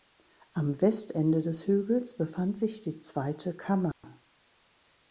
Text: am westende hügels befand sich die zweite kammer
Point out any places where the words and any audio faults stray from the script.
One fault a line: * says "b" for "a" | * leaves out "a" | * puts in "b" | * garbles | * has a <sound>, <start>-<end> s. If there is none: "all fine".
* puts in "des"
* has a dropout, 3.9-4.0 s